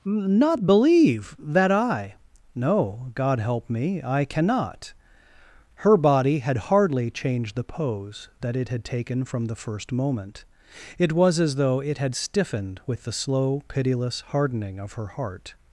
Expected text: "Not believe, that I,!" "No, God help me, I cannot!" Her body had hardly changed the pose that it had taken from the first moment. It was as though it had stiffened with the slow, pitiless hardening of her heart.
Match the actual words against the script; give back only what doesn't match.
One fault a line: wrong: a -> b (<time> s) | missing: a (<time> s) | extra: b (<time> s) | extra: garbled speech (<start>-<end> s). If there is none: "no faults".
no faults